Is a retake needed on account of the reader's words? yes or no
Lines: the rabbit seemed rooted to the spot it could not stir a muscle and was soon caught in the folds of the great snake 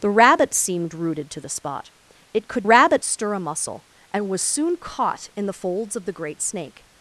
yes